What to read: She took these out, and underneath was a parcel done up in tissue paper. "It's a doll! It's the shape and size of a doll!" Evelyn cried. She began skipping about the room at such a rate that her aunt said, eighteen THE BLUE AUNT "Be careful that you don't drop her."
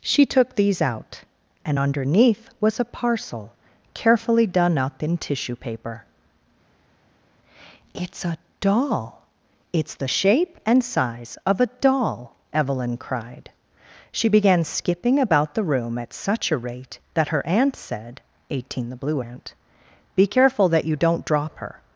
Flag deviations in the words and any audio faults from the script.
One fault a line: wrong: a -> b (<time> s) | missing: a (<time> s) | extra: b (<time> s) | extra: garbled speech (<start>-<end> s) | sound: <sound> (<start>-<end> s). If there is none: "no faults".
extra: carefully (3.9 s)